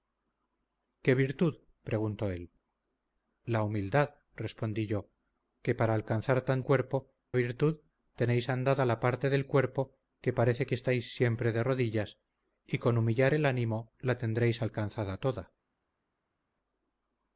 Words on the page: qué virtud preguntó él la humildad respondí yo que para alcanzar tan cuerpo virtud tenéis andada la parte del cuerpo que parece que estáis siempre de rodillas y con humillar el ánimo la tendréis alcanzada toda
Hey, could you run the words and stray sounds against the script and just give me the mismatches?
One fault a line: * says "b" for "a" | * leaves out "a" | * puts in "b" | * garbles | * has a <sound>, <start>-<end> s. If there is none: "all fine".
all fine